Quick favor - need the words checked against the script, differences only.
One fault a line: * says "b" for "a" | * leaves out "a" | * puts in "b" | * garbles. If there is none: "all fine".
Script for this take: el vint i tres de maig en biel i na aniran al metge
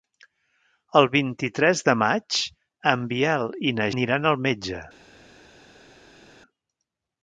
all fine